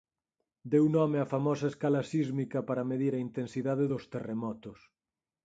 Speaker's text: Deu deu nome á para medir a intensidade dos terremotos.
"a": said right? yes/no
yes